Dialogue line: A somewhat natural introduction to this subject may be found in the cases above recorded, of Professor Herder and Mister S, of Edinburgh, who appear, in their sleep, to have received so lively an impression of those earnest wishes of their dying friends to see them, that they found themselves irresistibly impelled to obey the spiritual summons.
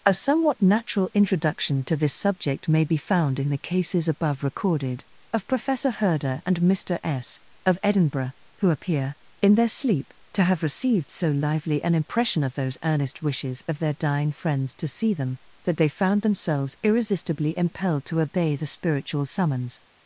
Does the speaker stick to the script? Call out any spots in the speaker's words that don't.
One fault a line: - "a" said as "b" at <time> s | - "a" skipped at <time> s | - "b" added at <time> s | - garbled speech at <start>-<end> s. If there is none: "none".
none